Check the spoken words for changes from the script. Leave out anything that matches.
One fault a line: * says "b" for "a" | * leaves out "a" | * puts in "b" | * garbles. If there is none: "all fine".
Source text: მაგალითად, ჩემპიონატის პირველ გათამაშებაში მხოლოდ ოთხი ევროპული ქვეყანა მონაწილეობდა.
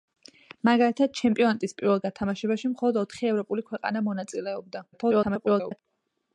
* garbles